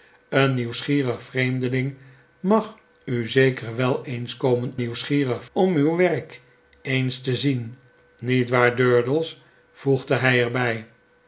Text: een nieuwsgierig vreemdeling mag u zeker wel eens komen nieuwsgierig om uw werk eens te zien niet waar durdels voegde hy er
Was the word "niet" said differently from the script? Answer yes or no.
no